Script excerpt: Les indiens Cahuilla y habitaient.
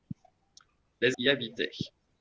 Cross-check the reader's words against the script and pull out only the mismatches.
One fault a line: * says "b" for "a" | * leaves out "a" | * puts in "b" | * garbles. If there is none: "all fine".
* leaves out "indiens Cahuilla"